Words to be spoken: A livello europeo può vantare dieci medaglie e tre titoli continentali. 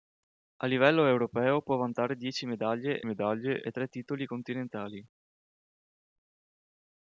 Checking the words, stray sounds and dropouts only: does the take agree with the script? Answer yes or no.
no